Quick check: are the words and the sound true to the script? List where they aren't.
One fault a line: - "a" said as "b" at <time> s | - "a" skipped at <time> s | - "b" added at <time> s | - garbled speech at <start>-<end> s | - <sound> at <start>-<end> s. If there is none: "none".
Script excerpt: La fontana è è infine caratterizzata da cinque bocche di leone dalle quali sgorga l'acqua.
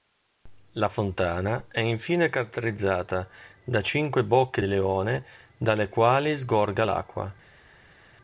- "è" skipped at 1.8 s